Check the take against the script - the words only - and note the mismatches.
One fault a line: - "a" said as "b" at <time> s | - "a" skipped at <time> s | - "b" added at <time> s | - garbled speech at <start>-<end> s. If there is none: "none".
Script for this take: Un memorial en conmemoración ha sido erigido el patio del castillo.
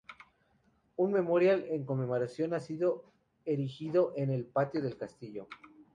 - "en" added at 4.2 s